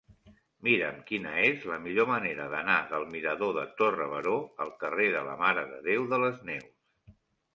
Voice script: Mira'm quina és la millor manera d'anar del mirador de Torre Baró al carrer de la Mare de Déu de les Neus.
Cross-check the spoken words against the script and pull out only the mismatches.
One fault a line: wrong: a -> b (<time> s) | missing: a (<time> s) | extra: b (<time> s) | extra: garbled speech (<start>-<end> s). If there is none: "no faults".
no faults